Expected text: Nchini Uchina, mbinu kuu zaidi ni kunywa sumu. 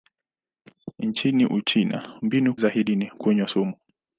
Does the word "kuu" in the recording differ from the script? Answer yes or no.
yes